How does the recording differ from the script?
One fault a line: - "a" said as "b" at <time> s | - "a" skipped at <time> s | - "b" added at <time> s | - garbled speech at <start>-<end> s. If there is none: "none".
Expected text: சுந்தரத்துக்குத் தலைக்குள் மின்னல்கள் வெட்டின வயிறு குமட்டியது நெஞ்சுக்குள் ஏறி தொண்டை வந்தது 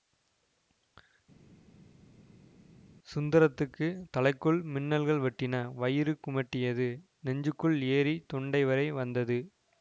- "வரை" added at 8.6 s